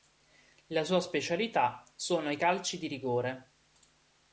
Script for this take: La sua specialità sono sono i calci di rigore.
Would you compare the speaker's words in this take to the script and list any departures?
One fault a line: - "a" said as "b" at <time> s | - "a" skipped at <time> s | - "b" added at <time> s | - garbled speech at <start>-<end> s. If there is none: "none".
- "sono" skipped at 2.3 s